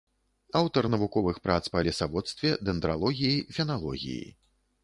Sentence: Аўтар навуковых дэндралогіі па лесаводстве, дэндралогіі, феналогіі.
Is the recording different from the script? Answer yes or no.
yes